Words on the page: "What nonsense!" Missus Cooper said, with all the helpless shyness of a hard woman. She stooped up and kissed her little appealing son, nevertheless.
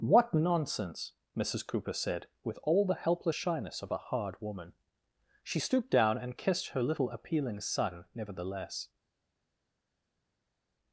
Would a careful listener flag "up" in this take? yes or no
yes